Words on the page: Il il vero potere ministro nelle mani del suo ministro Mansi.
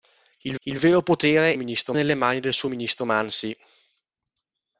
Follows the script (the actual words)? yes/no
yes